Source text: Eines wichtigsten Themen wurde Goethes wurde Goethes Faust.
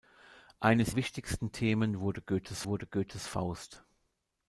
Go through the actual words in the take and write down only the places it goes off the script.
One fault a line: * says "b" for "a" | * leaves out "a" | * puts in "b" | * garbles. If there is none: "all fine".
all fine